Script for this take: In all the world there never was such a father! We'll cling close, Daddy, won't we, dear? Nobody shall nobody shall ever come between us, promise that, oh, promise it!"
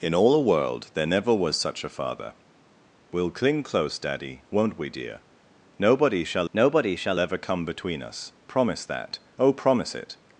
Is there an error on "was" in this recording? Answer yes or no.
no